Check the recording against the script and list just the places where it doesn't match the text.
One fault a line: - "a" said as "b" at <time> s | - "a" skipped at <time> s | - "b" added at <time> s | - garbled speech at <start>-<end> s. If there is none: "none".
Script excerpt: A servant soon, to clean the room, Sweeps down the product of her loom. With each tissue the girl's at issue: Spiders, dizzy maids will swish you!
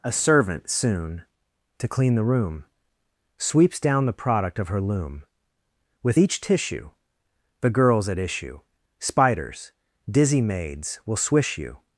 none